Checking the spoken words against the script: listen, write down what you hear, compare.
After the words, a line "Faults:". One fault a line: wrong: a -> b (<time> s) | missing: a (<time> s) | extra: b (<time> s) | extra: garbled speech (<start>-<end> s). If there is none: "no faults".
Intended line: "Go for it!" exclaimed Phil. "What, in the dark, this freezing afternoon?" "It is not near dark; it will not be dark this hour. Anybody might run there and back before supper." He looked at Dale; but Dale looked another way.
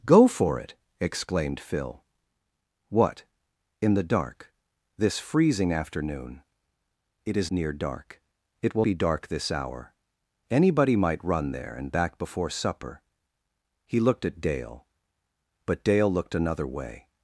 "Go for it!" exclaimed Phil. "What, in the dark, this freezing afternoon?" "It is near dark; it will be dark this hour. Anybody might run there and back before supper." He looked at Dale; but Dale looked another way.
Faults:
missing: not (7.5 s)
missing: not (8.9 s)